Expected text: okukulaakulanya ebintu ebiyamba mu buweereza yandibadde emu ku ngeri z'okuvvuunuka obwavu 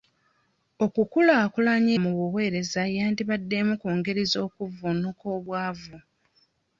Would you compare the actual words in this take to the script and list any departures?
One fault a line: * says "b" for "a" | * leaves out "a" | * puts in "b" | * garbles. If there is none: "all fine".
* leaves out "ebintu ebiyamba"